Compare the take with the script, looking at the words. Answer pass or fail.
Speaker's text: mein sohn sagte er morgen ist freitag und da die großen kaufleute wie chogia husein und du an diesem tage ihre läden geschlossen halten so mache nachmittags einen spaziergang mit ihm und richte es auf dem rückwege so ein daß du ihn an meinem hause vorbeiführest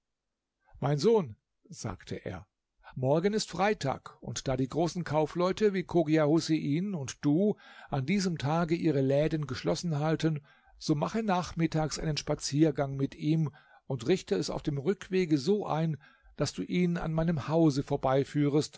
pass